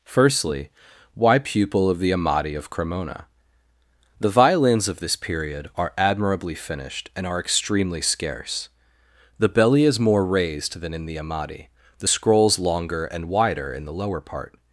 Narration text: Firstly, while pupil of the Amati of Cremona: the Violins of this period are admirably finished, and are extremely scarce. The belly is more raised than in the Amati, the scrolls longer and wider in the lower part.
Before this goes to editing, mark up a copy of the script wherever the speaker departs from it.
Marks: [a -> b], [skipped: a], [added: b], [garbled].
Firstly, [while -> why] pupil of the Amati of Cremona: the Violins of this period are admirably finished, and are extremely scarce. The belly is more raised than in the Amati, the scrolls longer and wider in the lower part.